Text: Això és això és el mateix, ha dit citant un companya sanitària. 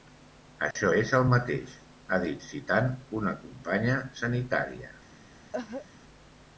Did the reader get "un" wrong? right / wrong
wrong